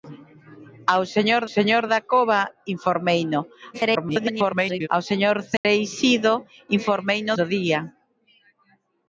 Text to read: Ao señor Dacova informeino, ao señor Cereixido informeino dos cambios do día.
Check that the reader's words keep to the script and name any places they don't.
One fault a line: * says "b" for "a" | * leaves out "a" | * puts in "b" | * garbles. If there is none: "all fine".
* puts in "señor"
* garbles
* leaves out "dos cambios"